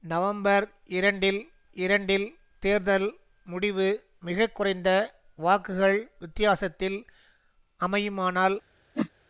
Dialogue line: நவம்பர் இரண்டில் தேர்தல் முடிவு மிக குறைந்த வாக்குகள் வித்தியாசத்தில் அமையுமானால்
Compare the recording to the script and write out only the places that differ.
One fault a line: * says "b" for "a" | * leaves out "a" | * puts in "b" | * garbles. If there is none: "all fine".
* puts in "இரண்டில்"